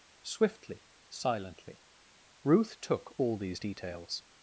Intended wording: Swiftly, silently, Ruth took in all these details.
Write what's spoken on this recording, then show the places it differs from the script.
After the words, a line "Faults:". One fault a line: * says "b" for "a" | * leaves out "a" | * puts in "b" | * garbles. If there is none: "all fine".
Swiftly, silently, Ruth took all these details.
Faults:
* leaves out "in"